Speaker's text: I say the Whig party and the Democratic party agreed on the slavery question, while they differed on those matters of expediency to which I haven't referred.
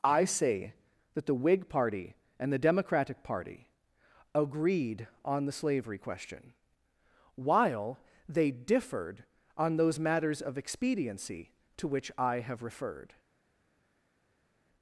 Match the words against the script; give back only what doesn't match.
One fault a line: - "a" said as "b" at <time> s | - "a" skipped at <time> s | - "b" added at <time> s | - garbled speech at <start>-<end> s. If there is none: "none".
- "that" added at 1.1 s
- "haven't" said as "have" at 12.4 s